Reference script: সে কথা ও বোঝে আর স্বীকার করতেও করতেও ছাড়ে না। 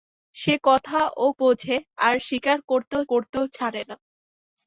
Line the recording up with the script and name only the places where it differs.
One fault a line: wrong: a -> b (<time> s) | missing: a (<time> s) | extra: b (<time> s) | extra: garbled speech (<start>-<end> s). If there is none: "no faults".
no faults